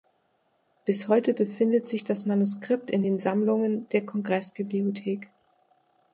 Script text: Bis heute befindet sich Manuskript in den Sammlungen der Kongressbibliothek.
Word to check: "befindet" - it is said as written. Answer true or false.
true